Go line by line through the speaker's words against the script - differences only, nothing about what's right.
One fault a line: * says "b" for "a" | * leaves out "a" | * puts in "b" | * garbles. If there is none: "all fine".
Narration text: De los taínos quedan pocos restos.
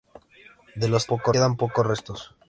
* says "pocos" for "taínos"